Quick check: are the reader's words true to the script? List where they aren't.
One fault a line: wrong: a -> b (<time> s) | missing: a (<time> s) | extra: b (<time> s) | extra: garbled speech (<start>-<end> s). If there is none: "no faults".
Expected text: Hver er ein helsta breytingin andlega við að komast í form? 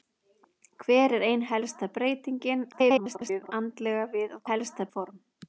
extra: garbled speech (2.7-3.5 s)
wrong: komast -> helsta (4.5 s)